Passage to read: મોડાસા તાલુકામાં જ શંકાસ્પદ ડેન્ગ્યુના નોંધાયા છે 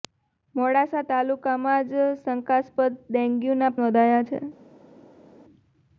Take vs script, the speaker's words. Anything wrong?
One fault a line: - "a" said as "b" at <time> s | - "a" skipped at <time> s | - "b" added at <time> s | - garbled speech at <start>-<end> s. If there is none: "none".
none